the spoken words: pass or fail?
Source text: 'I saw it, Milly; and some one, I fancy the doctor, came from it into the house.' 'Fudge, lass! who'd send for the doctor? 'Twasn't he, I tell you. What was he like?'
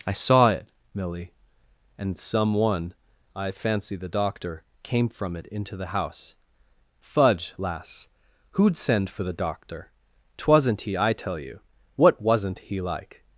fail